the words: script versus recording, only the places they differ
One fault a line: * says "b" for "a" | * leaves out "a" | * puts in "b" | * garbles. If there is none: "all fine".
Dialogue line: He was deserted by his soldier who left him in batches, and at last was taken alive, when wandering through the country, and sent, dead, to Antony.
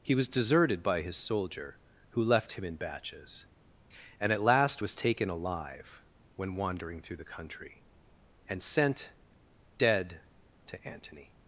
all fine